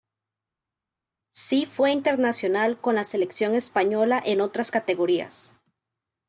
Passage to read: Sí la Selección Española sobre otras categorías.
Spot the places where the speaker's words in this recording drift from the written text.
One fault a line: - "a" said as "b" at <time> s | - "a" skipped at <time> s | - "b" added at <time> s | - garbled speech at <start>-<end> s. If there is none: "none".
- "fue internacional con" added at 1.7 s
- "sobre" said as "en" at 4.2 s